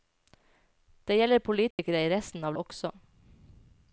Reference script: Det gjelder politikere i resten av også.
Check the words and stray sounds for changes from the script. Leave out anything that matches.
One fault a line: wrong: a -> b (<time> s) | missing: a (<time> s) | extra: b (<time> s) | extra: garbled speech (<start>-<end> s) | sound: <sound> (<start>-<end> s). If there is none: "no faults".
sound: dropout (1.7-1.8 s)